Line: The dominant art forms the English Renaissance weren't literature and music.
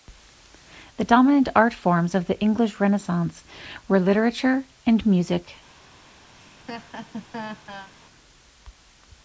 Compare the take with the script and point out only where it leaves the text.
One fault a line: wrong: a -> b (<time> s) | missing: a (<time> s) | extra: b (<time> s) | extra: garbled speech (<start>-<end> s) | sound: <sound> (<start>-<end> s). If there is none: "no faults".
extra: of (2.1 s)
wrong: weren't -> were (3.9 s)
sound: laugh (6.4-7.9 s)